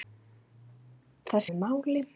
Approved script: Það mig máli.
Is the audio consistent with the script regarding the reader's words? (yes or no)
yes